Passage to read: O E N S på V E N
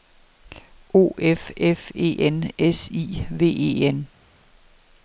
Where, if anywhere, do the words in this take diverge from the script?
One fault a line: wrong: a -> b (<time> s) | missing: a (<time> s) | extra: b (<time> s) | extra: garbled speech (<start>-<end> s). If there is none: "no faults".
extra: F F (1.2 s)
wrong: på -> I (2.9 s)